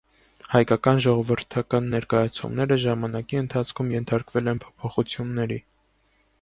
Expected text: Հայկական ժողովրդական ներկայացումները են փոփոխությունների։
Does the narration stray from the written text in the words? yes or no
yes